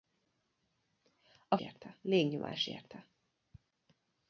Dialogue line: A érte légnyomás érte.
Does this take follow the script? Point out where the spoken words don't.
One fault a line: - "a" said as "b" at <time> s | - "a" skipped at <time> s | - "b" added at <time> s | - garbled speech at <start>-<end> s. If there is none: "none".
none